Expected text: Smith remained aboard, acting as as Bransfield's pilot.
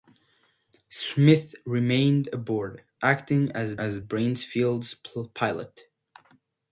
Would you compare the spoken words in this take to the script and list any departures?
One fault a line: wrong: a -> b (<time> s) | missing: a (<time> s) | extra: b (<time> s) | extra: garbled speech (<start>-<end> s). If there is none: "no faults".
no faults